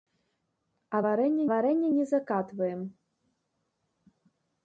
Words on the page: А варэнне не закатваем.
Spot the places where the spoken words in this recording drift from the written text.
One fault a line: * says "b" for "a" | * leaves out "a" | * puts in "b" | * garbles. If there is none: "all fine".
* puts in "варэнне"